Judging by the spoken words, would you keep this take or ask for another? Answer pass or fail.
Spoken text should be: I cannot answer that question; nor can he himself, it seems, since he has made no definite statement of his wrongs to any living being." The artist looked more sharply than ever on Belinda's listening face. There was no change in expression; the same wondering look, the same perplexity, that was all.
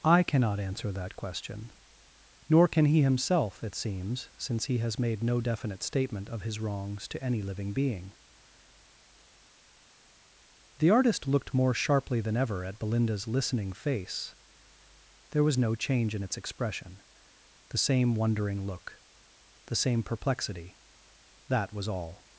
fail